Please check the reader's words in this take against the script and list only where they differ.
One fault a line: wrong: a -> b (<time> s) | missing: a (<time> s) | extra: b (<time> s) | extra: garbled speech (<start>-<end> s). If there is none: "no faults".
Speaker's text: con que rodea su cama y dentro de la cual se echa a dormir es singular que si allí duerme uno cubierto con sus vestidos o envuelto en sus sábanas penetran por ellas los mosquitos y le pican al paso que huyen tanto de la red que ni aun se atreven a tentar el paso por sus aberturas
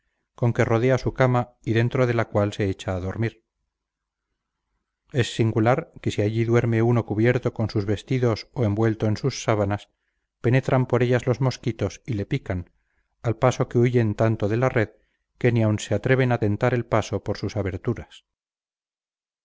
no faults